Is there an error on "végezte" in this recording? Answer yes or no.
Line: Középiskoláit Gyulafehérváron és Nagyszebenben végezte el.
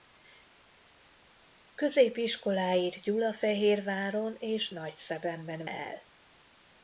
yes